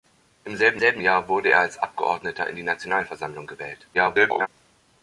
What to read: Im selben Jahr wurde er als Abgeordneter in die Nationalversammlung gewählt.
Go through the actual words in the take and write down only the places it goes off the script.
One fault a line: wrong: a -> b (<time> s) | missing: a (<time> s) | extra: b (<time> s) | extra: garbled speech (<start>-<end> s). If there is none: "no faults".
extra: selben (0.8 s)
extra: garbled speech (3.9-4.5 s)